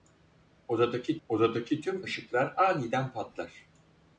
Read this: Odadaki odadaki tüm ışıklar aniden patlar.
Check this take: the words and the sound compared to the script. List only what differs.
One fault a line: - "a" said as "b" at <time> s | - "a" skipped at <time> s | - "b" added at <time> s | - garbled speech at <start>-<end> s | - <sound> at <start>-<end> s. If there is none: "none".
none